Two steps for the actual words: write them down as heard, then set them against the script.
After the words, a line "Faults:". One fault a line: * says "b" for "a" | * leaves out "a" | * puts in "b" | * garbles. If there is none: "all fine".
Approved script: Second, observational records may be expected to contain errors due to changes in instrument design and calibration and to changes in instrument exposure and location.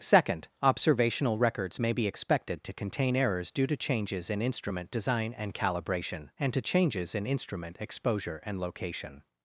Second, observational records may be expected to contain errors due to changes in instrument design and calibration and to changes in instrument exposure and location.
Faults:
all fine